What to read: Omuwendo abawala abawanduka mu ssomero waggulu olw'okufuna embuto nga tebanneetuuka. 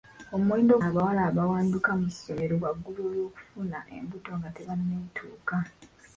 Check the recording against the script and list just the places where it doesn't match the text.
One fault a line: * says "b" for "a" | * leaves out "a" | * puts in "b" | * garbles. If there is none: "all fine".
all fine